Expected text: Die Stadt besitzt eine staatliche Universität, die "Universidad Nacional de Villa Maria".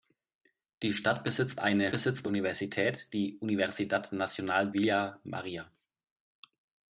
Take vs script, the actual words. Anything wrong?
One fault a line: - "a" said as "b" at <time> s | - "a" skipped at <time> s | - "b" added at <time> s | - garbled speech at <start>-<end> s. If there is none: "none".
- "staatliche" said as "besitzt" at 1.9 s
- "de" skipped at 4.7 s